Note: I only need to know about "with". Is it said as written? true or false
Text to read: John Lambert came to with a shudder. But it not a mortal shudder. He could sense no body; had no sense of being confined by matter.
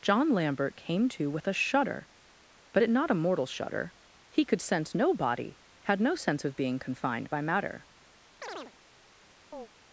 true